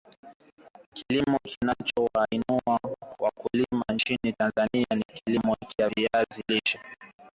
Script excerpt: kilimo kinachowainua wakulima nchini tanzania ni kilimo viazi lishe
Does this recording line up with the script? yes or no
no